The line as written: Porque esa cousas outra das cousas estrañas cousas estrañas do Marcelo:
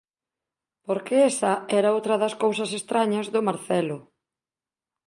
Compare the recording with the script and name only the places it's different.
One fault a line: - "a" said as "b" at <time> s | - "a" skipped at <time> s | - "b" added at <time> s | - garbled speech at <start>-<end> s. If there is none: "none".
- "cousas" said as "era" at 1.8 s
- "cousas estrañas" skipped at 3.3 s